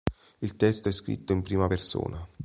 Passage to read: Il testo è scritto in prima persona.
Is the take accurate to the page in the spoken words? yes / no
yes